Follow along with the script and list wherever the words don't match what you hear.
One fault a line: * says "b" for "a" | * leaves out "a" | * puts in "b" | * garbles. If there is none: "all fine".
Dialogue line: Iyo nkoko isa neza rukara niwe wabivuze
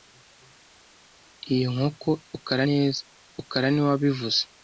* says "rukara" for "isa"